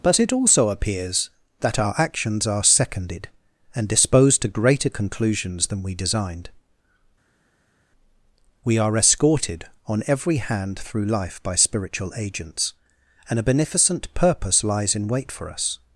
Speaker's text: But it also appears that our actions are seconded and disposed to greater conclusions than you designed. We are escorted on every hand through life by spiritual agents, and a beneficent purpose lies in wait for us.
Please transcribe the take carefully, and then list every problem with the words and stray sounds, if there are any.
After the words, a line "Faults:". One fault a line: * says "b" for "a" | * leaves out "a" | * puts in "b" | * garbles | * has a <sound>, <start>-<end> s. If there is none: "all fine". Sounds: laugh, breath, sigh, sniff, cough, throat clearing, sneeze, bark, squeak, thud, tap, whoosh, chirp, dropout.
But it also appears that our actions are seconded and disposed to greater conclusions than we designed. We are escorted on every hand through life by spiritual agents, and a beneficent purpose lies in wait for us.
Faults:
* says "we" for "you"